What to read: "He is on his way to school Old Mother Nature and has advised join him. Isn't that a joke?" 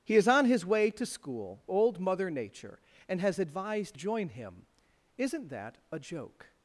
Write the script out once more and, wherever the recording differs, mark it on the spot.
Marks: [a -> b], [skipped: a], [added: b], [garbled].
"He is on his way to school Old Mother Nature and has advised join him. Isn't that a joke?"